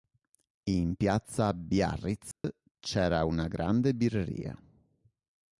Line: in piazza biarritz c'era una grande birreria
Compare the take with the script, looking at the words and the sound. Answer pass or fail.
fail